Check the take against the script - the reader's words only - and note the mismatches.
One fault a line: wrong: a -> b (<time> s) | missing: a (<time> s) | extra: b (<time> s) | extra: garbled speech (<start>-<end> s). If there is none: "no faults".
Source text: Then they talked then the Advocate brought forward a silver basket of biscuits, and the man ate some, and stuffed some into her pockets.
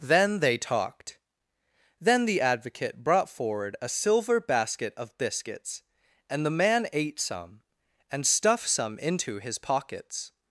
wrong: her -> his (9.4 s)